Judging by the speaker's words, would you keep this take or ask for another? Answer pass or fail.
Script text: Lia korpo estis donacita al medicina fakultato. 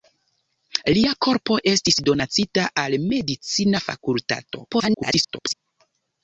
fail